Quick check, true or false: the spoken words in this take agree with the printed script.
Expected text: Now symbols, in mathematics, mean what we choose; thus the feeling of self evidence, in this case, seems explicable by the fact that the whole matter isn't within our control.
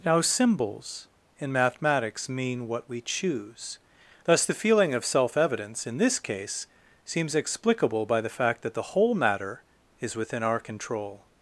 false